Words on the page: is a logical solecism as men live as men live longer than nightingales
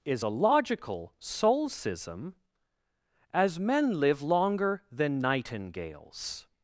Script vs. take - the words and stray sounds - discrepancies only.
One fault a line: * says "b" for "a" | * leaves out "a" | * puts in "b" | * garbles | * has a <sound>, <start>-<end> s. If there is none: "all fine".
* leaves out "as men live"